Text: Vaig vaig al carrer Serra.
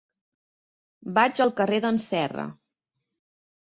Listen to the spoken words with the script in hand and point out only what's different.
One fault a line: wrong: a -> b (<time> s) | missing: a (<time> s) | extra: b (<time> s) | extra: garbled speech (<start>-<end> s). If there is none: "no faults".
missing: vaig (1.4 s)
extra: d'en (1.9 s)